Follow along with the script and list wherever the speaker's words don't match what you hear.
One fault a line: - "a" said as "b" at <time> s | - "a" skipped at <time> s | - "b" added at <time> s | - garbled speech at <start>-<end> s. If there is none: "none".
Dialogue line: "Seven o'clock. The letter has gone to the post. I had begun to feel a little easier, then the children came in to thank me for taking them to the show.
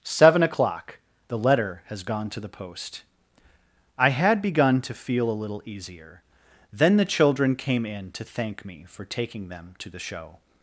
none